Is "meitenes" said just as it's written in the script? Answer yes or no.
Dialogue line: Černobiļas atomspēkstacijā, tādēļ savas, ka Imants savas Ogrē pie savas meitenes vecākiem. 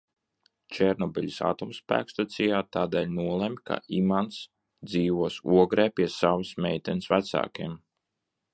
yes